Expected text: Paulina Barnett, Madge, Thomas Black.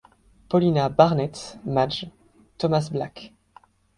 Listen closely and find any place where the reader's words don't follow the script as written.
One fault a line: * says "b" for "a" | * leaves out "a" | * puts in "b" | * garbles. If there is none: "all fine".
all fine